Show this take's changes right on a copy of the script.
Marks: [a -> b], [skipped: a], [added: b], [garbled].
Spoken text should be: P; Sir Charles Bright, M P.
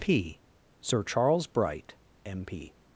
P; Sir Charles Bright, M P.